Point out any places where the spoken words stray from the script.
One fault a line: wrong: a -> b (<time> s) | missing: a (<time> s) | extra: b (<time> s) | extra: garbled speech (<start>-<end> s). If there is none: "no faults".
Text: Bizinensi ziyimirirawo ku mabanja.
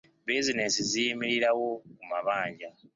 no faults